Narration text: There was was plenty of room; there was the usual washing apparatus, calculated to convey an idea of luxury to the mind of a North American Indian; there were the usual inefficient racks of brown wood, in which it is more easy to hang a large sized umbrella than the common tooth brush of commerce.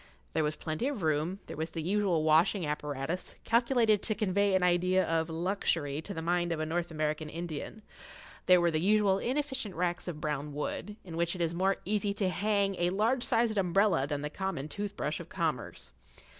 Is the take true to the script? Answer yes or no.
no